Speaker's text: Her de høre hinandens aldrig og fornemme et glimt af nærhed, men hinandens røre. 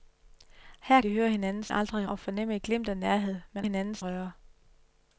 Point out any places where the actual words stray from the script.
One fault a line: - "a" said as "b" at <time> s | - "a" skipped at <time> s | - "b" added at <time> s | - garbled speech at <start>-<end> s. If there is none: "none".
none